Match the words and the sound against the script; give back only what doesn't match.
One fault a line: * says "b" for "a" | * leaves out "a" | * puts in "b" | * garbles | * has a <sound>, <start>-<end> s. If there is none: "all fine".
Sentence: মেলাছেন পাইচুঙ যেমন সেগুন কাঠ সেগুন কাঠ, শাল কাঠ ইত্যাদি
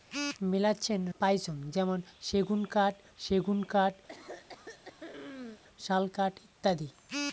* has a throat clearing, 4.1-5.6 s